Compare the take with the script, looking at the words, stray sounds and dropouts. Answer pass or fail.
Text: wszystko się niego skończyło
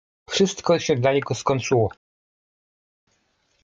fail